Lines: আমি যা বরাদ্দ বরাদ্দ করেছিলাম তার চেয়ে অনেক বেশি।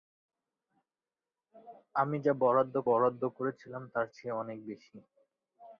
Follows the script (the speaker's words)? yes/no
yes